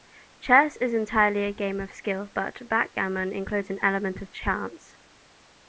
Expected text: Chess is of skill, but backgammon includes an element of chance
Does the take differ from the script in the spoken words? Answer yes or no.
yes